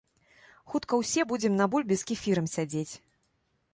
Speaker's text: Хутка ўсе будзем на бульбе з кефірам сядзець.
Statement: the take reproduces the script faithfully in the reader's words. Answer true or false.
true